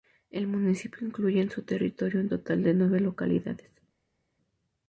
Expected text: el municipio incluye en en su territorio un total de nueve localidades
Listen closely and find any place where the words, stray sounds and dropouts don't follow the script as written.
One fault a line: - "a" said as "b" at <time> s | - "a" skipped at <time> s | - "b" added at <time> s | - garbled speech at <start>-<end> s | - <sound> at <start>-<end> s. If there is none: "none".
- "en" skipped at 1.5 s